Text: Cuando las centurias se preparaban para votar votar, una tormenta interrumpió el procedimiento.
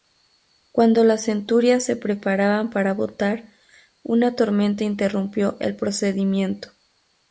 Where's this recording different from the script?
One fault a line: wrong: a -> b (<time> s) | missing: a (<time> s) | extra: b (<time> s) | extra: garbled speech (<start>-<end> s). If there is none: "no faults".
missing: votar (3.5 s)